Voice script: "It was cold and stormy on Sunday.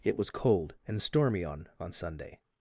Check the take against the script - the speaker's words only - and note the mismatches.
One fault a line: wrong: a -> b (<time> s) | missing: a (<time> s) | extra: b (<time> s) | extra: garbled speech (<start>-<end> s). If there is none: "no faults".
extra: on (1.8 s)